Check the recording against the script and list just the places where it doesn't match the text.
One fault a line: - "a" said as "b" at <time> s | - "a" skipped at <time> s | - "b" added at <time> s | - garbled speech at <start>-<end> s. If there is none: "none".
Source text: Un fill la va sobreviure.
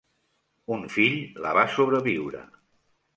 none